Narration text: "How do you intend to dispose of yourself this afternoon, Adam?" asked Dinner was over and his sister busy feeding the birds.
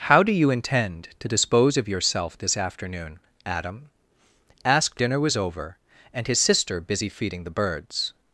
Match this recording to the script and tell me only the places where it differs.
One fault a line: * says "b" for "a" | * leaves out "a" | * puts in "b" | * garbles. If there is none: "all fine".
all fine